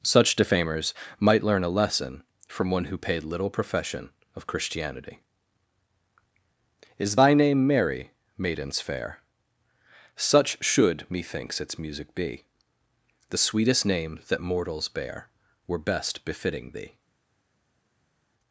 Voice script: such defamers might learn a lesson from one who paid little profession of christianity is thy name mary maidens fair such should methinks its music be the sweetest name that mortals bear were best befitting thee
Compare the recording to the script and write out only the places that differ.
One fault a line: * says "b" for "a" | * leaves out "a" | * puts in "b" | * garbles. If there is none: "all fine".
all fine